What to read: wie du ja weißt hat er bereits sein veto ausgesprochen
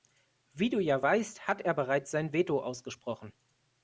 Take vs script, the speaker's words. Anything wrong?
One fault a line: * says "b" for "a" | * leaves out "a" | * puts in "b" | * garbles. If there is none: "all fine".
all fine